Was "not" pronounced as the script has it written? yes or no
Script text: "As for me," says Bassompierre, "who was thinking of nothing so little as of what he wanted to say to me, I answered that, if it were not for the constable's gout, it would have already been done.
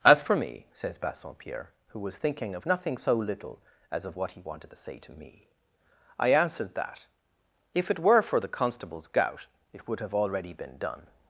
no